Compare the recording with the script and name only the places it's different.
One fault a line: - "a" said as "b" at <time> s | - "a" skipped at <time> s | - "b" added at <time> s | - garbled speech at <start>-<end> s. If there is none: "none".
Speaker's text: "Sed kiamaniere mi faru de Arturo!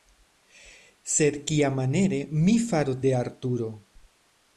none